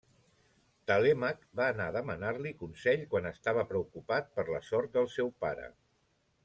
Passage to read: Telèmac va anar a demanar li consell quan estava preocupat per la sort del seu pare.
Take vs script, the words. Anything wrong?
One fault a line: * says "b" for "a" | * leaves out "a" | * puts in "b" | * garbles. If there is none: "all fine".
all fine